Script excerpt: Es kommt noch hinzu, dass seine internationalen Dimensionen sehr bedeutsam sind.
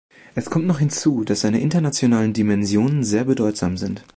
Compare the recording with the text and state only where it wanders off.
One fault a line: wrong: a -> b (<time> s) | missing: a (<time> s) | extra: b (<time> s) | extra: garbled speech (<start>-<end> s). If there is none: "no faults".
no faults